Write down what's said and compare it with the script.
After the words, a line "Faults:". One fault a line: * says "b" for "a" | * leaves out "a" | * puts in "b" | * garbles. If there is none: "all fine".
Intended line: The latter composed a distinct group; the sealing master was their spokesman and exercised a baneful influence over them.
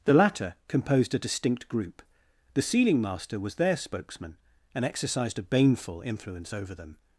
The latter composed a distinct group; the sealing master was their spokesman and exercised a baneful influence over them.
Faults:
all fine